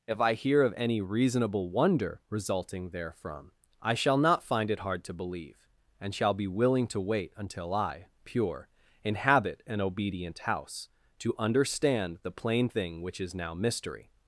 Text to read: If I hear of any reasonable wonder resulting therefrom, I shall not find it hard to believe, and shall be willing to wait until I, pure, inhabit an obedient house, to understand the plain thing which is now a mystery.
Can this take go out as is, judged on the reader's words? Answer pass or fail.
fail